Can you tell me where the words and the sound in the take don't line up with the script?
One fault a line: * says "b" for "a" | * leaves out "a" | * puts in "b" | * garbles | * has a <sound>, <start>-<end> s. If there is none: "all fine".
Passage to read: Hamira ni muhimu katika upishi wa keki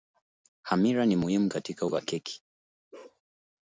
* leaves out "upishi"
* has a bark, 2.9-3.2 s